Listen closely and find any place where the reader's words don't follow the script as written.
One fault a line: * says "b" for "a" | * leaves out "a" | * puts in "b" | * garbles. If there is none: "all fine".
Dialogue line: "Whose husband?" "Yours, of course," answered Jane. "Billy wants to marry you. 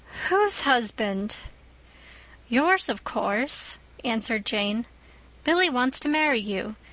all fine